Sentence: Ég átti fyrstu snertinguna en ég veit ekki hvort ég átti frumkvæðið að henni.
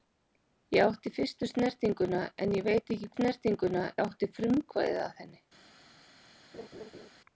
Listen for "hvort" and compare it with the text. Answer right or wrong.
wrong